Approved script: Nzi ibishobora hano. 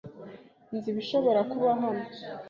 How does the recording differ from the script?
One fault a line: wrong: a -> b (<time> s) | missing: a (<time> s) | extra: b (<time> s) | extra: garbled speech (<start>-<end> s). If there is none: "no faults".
extra: kuba (1.5 s)